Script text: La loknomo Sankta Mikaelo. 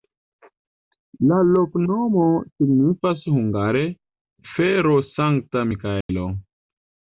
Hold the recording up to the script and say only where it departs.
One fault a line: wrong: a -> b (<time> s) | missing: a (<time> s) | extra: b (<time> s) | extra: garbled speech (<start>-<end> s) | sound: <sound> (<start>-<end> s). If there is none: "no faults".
extra: signifas hungare fero (2.5 s)
sound: dropout (6.0-6.1 s)